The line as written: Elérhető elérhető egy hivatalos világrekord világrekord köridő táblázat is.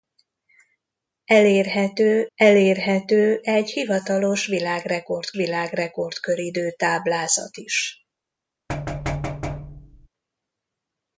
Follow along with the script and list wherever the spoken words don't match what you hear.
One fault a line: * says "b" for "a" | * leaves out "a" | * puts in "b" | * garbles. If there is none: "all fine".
all fine